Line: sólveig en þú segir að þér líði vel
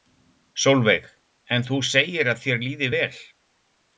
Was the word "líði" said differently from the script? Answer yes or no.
no